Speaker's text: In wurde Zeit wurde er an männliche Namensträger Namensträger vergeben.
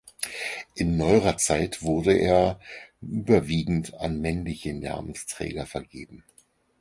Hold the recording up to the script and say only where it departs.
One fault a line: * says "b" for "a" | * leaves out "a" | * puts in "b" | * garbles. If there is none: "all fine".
* says "neuerer" for "wurde"
* puts in "überwiegend"
* leaves out "Namensträger"